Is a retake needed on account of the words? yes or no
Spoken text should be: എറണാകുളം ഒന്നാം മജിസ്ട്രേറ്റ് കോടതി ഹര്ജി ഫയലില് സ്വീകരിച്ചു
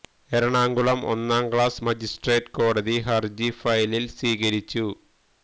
yes